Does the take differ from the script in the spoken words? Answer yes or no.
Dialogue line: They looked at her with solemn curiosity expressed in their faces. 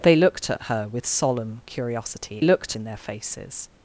yes